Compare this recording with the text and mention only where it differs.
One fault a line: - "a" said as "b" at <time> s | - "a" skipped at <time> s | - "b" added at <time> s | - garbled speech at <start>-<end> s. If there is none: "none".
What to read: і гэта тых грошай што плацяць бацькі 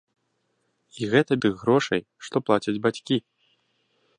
none